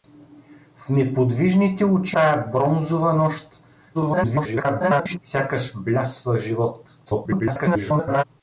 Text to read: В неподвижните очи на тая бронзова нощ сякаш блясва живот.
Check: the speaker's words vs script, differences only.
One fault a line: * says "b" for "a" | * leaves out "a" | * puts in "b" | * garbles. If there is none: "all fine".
* leaves out "на"
* garbles
* garbles